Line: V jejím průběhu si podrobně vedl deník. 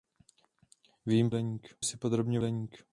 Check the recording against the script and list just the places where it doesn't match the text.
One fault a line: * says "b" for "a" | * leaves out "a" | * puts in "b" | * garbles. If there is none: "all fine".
* says "deník" for "průběhu"
* leaves out "vedl"